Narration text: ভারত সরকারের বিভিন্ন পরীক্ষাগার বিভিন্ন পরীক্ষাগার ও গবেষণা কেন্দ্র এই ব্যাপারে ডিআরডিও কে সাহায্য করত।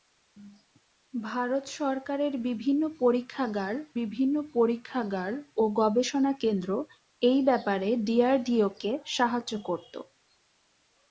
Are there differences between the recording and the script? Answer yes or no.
no